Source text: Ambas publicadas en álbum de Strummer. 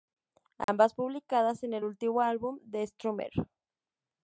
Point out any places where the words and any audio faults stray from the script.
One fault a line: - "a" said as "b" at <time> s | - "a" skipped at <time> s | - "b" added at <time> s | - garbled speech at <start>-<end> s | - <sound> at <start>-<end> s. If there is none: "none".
- dropout at 0.6-0.7 s
- "el último" added at 1.8 s